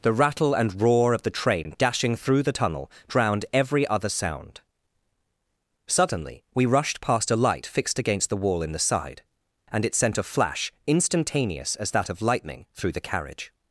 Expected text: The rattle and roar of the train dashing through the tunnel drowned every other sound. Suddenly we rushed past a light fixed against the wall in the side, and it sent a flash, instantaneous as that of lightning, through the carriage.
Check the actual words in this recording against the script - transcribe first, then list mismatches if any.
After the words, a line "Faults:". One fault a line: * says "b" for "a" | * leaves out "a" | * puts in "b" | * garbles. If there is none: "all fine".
The rattle and roar of the train dashing through the tunnel drowned every other sound. Suddenly we rushed past a light fixed against the wall in the side, and it sent a flash, instantaneous as that of lightning, through the carriage.
Faults:
all fine